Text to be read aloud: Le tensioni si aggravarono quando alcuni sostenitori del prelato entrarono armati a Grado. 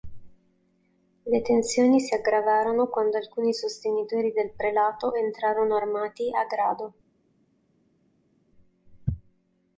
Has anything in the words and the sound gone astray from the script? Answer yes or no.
no